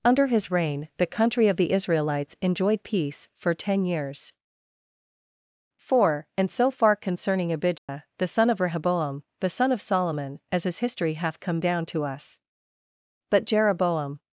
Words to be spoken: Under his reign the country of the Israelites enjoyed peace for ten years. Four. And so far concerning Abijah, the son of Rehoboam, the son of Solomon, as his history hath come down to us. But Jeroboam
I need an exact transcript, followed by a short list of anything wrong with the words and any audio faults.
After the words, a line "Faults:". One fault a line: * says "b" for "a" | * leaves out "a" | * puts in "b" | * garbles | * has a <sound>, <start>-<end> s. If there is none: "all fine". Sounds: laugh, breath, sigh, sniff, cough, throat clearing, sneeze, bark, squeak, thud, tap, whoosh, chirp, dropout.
Under his reign the country of the Israelites enjoyed peace for ten years. Four. And so far concerning Abijah, the son of Rehoboam, the son of Solomon, as his history hath come down to us. But Jeroboam
Faults:
* has a dropout, 7.8-7.9 s